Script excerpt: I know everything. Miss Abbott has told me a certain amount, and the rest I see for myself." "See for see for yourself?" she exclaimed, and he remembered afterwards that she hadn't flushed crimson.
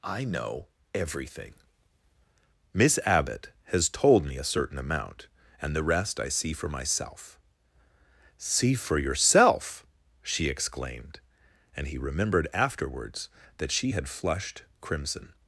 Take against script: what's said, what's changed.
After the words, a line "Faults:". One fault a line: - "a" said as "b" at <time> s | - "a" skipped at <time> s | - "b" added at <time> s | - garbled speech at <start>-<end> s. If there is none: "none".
I know everything. Miss Abbott has told me a certain amount, and the rest I see for myself." "See for yourself?" she exclaimed, and he remembered afterwards that she had flushed crimson.
Faults:
- "see for" skipped at 9.0 s
- "hadn't" said as "had" at 13.9 s